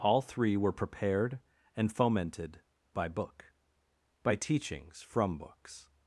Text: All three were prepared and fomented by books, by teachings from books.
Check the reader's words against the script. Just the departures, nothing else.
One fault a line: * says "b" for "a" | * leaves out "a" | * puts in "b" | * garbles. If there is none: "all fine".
* says "book" for "books"